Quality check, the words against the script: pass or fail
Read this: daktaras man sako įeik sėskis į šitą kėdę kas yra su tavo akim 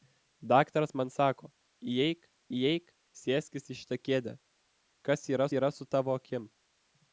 fail